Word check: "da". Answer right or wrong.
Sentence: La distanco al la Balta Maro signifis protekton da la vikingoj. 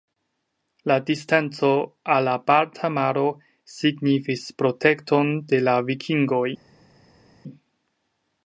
wrong